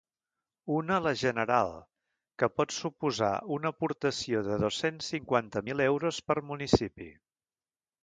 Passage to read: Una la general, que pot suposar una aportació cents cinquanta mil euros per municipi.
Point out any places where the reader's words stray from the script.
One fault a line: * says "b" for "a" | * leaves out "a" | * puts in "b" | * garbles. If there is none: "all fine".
* puts in "de dos"